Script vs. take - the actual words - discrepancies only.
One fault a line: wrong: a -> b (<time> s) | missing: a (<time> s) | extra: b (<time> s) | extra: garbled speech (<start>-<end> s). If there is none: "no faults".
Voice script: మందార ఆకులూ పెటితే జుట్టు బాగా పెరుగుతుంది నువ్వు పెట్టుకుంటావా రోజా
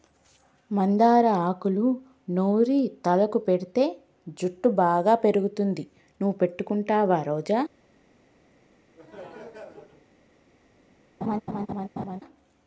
extra: నూరి తలకు (2.3 s)